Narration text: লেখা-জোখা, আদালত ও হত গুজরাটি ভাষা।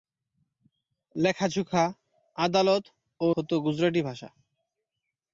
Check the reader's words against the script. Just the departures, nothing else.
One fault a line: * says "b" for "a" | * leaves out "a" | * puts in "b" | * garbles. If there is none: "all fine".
all fine